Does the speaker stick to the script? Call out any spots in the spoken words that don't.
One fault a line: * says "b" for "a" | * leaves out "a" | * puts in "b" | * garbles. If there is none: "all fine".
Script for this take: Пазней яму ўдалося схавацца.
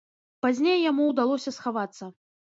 all fine